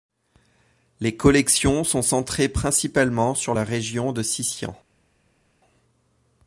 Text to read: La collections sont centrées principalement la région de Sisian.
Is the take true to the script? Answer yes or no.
no